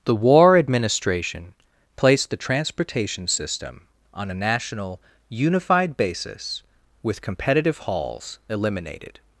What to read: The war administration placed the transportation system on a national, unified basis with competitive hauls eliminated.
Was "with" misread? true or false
false